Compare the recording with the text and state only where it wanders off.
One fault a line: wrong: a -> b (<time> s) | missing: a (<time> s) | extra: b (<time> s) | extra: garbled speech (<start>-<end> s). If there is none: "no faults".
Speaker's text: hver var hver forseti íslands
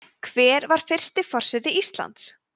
wrong: hver -> fyrsti (0.9 s)